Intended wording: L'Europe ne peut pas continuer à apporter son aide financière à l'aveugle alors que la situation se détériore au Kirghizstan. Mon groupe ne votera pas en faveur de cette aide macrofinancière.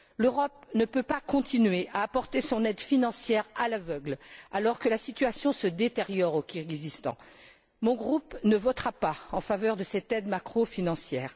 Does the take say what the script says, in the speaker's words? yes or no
yes